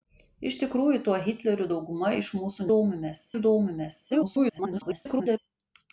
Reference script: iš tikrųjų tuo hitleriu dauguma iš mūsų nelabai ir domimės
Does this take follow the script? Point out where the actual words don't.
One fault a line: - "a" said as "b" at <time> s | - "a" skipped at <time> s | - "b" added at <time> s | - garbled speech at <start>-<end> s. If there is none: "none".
- "nelabai" said as "domimės" at 2.7 s
- garbled speech at 4.1-5.4 s